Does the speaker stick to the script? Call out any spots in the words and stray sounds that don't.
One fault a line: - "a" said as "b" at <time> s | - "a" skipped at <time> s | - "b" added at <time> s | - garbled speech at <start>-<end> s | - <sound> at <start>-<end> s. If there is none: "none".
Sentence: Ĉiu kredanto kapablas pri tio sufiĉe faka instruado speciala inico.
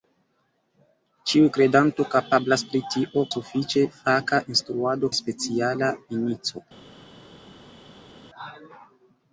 none